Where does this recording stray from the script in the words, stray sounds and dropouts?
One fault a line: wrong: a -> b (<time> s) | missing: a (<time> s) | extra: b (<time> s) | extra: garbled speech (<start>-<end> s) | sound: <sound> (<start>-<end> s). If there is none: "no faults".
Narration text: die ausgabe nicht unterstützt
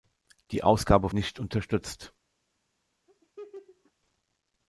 sound: laugh (3.1-3.9 s)